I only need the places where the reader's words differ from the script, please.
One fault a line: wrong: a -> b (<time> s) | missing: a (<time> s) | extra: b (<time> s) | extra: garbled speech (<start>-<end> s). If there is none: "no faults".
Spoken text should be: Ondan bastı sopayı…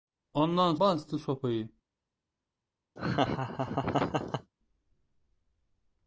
no faults